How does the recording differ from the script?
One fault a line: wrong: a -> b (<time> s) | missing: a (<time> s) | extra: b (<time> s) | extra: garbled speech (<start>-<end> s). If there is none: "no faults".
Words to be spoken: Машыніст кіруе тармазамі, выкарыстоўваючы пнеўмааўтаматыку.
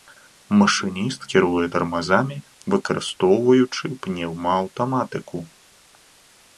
no faults